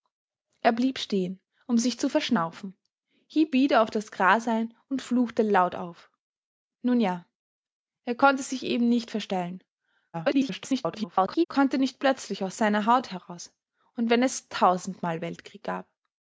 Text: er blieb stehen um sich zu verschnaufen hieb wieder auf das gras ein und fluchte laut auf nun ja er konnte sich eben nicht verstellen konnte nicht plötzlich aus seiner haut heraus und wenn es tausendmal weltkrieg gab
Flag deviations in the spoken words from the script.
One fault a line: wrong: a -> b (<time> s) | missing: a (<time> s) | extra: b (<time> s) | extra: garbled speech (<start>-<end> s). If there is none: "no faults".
extra: garbled speech (10.1-11.5 s)